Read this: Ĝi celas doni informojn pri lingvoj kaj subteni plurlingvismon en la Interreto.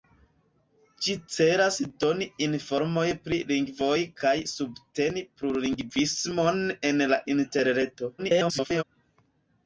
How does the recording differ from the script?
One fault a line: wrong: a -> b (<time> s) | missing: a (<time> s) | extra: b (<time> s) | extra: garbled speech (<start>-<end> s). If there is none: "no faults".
extra: garbled speech (8.2-8.8 s)